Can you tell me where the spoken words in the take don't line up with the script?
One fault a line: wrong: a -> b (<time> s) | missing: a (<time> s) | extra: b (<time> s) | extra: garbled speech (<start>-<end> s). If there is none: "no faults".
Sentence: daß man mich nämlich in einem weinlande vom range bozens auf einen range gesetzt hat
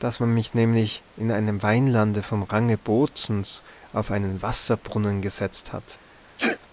wrong: range -> wasserbrunnen (4.4 s)